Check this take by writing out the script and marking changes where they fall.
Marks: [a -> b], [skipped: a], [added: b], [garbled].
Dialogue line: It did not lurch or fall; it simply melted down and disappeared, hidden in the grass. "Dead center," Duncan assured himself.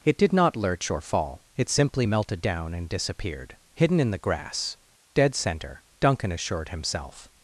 It did not lurch or fall; it simply melted down and disappeared, hidden in the grass. "Dead center," Duncan assured himself.